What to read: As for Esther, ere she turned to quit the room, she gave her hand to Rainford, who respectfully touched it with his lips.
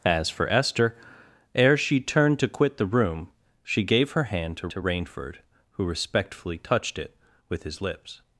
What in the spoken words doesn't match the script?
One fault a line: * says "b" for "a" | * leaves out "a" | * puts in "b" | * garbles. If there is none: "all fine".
* puts in "to"